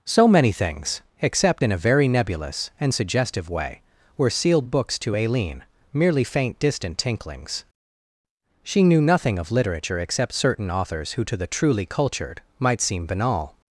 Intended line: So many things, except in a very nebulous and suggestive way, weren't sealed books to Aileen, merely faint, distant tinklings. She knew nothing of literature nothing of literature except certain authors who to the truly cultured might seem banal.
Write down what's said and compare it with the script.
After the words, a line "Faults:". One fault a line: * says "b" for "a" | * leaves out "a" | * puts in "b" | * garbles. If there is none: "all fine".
So many things, except in a very nebulous and suggestive way, were sealed books to Aileen, merely faint, distant tinklings. She knew nothing of literature except certain authors who to the truly cultured might seem banal.
Faults:
* says "were" for "weren't"
* leaves out "nothing of literature"